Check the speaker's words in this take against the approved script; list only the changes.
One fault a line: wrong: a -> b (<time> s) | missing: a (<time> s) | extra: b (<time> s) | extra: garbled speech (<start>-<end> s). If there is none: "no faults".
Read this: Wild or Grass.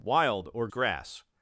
no faults